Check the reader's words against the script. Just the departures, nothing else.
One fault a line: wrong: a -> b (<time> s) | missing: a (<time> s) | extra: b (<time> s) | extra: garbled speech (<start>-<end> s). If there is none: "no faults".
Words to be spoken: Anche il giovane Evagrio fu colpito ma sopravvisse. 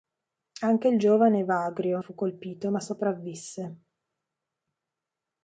no faults